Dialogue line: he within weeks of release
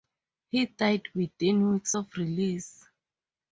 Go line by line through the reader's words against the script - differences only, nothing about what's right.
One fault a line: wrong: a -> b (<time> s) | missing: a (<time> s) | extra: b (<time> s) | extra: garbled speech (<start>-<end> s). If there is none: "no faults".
extra: died (0.7 s)